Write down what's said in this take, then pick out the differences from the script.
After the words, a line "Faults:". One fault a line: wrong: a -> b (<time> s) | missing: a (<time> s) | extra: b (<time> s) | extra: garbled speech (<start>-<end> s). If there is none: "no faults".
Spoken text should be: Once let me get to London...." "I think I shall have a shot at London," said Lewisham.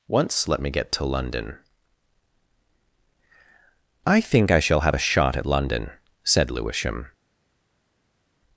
Once let me get to London...." "I think I shall have a shot at London," said Lewisham.
Faults:
no faults